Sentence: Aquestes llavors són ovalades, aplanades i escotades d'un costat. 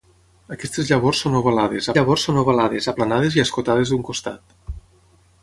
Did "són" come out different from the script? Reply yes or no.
no